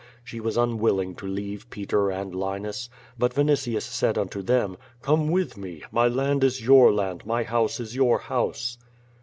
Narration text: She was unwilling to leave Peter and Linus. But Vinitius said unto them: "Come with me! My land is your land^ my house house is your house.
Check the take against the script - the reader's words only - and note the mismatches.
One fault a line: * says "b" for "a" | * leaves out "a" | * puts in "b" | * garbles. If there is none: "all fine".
* leaves out "house"